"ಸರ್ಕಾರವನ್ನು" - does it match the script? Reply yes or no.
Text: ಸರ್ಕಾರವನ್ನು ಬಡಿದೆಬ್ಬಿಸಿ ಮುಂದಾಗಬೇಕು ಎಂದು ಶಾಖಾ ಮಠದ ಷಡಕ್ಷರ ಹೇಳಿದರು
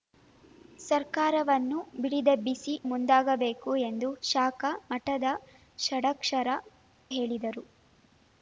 yes